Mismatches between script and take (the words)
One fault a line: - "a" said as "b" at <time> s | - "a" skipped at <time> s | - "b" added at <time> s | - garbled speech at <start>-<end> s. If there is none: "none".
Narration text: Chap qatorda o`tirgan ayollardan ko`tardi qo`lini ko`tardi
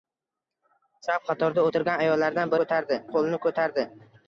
none